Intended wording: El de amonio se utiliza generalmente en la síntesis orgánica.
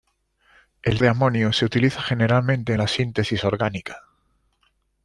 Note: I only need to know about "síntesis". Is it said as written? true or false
true